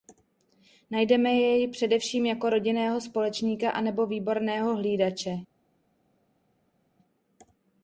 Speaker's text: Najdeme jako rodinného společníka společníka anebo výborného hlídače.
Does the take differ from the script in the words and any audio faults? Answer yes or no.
yes